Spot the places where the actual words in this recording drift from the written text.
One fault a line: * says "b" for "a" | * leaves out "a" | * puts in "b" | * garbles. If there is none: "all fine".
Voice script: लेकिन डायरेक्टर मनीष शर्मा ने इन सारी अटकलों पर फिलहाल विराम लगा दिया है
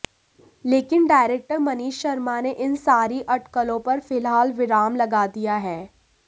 all fine